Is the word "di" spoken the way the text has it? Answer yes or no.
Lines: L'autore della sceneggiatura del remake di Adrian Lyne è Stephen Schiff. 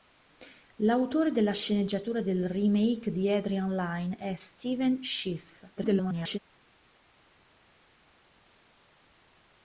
yes